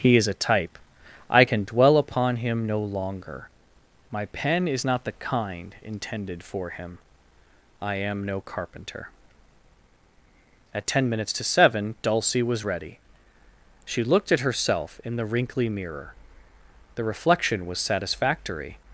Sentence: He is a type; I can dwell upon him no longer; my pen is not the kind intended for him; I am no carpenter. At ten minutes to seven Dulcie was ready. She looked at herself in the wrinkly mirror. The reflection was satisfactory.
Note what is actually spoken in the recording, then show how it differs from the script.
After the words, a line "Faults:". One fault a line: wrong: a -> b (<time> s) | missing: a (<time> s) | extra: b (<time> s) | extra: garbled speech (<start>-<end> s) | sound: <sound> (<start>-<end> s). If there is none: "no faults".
He is a type; I can dwell upon him no longer; my pen is not the kind intended for him; I am no carpenter. At ten minutes to seven Dulcie was ready. She looked at herself in the wrinkly mirror. The reflection was satisfactory.
Faults:
no faults